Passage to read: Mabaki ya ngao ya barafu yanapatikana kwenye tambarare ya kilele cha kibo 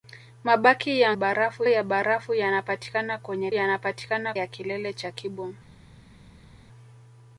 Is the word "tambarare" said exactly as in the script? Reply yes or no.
no